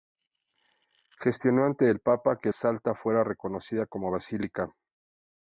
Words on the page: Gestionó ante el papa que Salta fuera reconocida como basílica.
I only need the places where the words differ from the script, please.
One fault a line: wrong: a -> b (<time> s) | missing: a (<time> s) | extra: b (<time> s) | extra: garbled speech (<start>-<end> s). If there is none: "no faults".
no faults